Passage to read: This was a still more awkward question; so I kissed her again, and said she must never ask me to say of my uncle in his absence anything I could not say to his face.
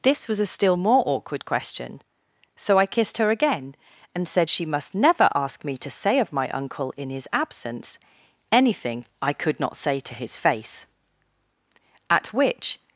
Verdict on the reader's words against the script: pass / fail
fail